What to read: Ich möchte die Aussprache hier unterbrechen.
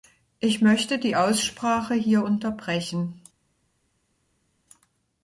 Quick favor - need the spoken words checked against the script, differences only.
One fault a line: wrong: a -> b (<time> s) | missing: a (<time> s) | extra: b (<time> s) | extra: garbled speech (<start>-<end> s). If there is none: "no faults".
no faults